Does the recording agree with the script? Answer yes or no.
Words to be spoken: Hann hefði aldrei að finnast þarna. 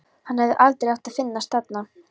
no